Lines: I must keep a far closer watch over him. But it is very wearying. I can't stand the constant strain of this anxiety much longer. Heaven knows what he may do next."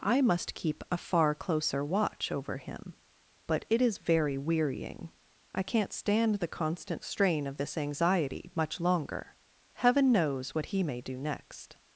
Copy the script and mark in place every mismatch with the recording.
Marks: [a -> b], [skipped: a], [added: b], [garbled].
I must keep a far closer watch over him. But it is very wearying. I can't stand the constant strain of this anxiety much longer. Heaven knows what he may do next."